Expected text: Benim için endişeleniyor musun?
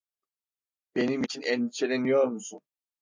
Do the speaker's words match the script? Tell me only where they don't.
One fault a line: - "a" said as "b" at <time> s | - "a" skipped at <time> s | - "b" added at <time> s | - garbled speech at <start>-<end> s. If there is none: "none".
none